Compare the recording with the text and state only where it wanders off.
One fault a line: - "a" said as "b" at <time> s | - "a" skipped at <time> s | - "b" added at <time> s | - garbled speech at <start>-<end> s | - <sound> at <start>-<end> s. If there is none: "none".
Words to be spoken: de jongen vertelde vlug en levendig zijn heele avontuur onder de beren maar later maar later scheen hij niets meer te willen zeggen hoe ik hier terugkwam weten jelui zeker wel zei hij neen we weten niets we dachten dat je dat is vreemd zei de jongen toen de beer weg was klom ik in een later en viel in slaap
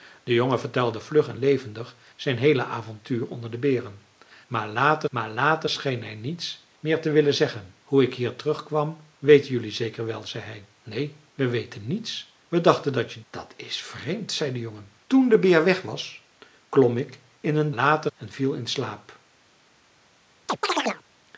- chirp at 20.5-21.0 s